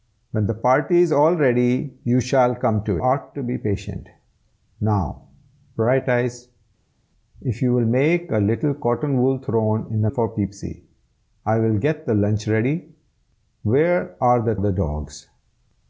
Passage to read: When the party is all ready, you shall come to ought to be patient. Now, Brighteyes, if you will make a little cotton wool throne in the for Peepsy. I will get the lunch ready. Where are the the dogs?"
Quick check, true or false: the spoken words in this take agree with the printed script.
true